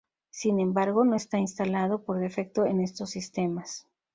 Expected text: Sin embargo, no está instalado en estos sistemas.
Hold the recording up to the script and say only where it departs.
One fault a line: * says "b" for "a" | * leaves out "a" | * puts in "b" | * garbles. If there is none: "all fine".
* puts in "por defecto"